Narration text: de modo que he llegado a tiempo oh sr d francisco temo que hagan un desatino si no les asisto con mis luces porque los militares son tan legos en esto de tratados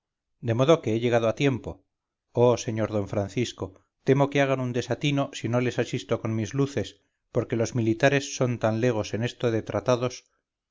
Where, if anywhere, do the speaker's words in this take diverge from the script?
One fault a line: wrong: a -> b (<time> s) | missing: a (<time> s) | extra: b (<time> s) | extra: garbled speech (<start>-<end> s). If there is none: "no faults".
no faults